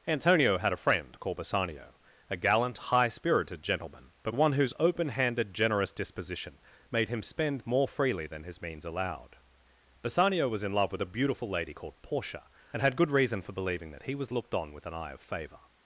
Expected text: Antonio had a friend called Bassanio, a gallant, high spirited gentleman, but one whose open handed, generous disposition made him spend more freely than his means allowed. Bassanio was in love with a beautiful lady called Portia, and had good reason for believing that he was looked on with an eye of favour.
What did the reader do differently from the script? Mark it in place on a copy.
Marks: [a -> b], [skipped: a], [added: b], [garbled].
Antonio had a friend called Bassanio, a gallant, high spirited gentleman, but one whose open handed, generous disposition made him spend more freely than his means allowed. Bassanio was in love with a beautiful lady called Portia, and had good reason for believing that he was looked on with an eye of favour.